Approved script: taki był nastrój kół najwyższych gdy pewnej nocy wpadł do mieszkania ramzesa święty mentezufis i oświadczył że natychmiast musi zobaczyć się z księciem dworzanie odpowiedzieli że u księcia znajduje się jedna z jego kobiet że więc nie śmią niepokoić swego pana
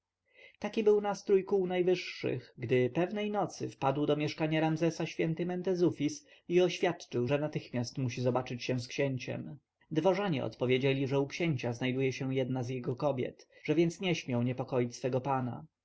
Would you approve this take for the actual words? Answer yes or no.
yes